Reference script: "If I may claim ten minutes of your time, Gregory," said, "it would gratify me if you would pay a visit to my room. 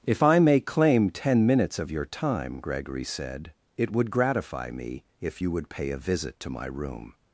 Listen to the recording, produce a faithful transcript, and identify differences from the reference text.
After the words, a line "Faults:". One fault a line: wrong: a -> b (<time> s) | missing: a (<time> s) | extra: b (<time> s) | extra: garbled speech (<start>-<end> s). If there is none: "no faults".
"If I may claim ten minutes of your time, Gregory," said, "it would gratify me if you would pay a visit to my room.
Faults:
no faults